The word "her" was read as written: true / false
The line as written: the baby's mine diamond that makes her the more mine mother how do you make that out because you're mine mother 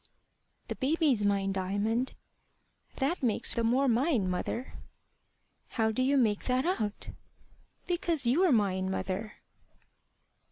false